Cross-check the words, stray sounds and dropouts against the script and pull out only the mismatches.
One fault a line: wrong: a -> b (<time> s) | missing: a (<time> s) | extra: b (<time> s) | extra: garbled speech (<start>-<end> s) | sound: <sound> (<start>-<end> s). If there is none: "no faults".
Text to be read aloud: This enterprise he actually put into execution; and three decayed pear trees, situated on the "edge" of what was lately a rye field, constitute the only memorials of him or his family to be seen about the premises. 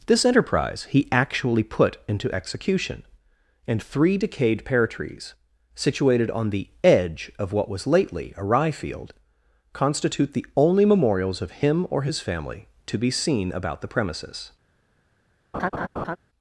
sound: laugh (15.5-16.2 s)